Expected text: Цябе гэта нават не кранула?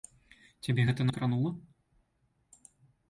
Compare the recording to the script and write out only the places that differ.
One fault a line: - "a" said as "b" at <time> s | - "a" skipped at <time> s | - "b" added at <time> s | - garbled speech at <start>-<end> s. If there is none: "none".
- "нават" skipped at 1.1 s